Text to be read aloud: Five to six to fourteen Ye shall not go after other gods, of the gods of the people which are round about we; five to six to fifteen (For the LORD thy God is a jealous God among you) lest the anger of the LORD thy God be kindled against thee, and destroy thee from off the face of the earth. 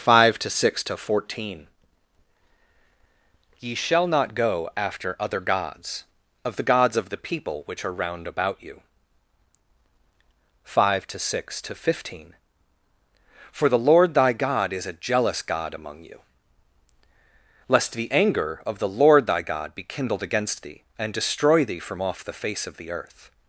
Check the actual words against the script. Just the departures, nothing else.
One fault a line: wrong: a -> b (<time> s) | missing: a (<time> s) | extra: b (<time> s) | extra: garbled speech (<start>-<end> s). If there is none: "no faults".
wrong: we -> you (8.6 s)